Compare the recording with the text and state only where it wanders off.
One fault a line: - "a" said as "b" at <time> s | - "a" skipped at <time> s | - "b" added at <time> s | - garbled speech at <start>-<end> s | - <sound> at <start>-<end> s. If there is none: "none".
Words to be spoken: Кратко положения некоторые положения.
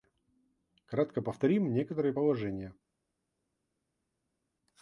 - "положения" said as "повторим" at 1.2 s